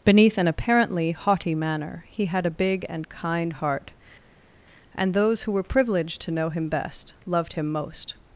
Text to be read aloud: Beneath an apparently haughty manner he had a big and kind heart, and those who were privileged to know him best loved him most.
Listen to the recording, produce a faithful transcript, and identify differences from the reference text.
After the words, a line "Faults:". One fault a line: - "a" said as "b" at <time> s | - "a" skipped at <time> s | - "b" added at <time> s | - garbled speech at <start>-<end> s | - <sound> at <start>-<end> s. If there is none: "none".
Beneath an apparently haughty manner he had a big and kind heart, and those who were privileged to know him best loved him most.
Faults:
none